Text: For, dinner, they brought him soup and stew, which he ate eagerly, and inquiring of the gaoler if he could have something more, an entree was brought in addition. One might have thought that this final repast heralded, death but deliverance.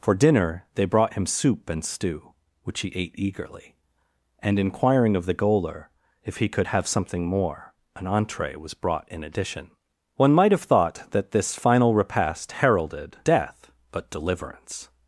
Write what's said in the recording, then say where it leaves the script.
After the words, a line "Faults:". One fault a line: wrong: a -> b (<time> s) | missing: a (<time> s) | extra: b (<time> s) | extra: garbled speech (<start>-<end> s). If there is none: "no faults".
For, dinner, they brought him soup and stew, which he ate eagerly, and inquiring of the gaoler if he could have something more, an entree was brought in addition. One might have thought that this final repast heralded, death but deliverance.
Faults:
no faults